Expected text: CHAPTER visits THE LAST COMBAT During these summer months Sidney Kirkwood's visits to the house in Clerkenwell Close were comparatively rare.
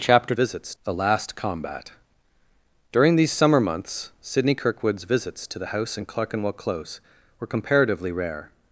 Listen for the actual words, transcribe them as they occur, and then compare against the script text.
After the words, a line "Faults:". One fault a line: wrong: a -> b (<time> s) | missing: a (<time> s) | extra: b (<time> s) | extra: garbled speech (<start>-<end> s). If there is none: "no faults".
CHAPTER visits THE LAST COMBAT During these summer months Sidney Kirkwood's visits to the house in Clerkenwell Close were comparatively rare.
Faults:
no faults